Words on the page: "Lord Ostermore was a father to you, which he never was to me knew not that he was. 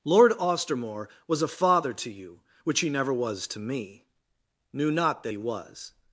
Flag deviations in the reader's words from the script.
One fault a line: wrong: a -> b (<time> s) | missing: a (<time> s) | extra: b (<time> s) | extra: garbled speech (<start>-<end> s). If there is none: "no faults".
no faults